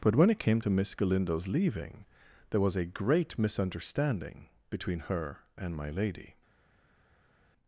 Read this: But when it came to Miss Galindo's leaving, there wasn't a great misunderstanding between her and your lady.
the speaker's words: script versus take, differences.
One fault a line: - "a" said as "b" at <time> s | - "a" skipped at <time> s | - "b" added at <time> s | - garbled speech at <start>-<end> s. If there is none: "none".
- "wasn't" said as "was" at 2.6 s
- "your" said as "my" at 5.8 s